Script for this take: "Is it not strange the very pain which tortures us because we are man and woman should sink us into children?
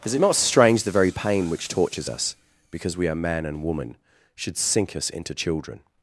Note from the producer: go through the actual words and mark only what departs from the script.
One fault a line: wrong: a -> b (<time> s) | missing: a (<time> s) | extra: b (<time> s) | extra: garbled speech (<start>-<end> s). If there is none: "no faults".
no faults